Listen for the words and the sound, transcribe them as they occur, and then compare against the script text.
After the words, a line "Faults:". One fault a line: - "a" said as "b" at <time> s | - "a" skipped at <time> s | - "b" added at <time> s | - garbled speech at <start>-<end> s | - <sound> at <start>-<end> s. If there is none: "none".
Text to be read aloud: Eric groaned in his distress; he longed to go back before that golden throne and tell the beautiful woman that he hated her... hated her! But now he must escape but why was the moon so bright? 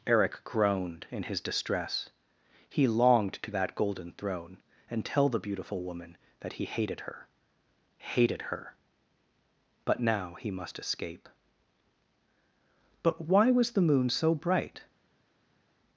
Eric groaned in his distress; he longed to that golden throne and tell the beautiful woman that he hated her... hated her! But now he must escape but why was the moon so bright?
Faults:
- "go back before" skipped at 3.5 s